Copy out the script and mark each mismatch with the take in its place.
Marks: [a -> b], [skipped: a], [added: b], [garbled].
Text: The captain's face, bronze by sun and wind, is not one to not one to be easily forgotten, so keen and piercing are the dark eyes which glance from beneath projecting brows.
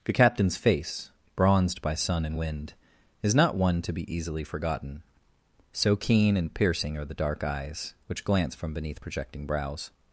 The captain's face, [bronze -> bronzed] by sun and wind, is not one to [skipped: not one to] be easily forgotten, so keen and piercing are the dark eyes which glance from beneath projecting brows.